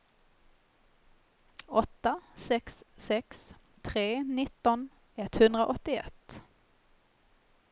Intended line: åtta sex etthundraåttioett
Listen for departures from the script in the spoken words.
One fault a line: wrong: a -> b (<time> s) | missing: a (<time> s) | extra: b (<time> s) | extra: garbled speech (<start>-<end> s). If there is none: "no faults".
extra: sex tre nitton (3.0 s)